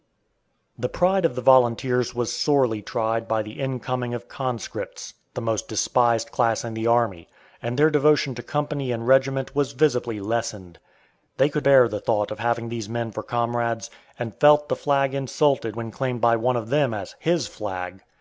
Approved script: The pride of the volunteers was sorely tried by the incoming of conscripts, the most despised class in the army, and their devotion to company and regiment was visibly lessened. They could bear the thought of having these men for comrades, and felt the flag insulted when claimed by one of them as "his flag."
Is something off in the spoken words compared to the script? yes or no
no